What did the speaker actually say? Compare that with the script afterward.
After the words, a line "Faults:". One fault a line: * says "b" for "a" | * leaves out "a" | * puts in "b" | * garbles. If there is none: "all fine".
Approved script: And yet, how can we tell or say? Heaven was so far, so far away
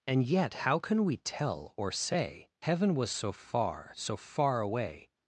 And yet, how can we tell or say? Heaven was so far, so far away
Faults:
all fine